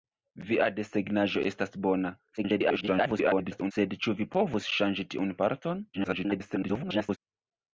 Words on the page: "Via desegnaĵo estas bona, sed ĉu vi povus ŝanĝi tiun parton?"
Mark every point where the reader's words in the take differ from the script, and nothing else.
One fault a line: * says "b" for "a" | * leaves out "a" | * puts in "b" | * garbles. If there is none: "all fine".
* garbles
* garbles